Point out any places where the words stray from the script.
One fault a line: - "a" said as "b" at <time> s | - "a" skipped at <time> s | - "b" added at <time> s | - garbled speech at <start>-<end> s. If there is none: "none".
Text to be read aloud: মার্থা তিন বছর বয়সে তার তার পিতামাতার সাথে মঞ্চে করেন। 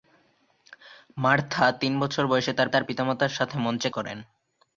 none